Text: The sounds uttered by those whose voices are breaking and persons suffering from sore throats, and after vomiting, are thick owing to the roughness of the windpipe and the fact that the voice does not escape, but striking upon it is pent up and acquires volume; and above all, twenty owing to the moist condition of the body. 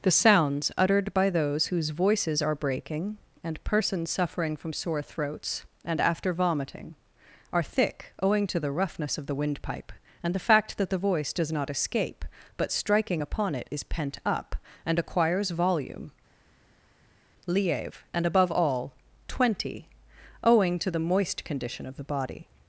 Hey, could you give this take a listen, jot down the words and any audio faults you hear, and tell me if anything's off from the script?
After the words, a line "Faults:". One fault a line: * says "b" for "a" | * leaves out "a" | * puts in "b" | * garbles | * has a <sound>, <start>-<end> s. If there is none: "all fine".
The sounds uttered by those whose voices are breaking and persons suffering from sore throats, and after vomiting, are thick owing to the roughness of the windpipe and the fact that the voice does not escape, but striking upon it is pent up and acquires volume; lieve and above all, twenty owing to the moist condition of the body.
Faults:
* puts in "lieve"